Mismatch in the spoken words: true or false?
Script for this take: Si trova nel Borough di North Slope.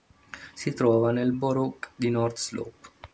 false